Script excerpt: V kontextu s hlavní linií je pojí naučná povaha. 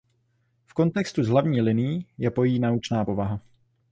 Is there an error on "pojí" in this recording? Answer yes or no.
no